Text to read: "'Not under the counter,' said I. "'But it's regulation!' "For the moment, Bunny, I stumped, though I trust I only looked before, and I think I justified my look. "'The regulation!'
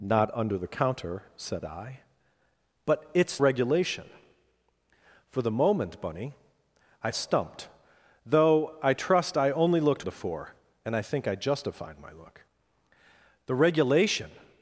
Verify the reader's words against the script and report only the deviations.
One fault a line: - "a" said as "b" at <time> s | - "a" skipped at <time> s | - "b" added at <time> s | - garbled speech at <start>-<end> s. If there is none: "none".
none